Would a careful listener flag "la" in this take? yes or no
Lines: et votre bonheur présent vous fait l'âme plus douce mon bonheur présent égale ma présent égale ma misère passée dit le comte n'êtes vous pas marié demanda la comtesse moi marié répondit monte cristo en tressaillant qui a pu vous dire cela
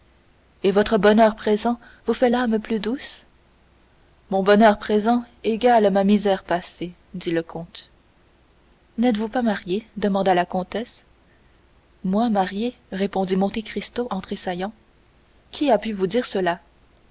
no